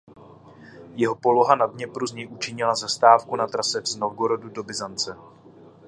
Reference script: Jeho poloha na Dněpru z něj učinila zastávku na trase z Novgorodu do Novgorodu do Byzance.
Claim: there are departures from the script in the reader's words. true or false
true